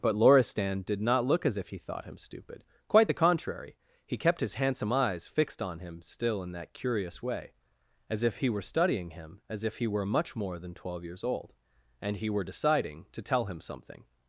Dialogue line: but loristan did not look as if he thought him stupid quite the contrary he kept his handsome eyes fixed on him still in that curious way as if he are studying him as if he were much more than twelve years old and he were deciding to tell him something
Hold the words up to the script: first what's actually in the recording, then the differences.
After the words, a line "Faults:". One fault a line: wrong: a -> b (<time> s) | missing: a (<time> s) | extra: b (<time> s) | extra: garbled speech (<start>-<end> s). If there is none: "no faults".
but loristan did not look as if he thought him stupid quite the contrary he kept his handsome eyes fixed on him still in that curious way as if he were studying him as if he were much more than twelve years old and he were deciding to tell him something
Faults:
wrong: are -> were (8.5 s)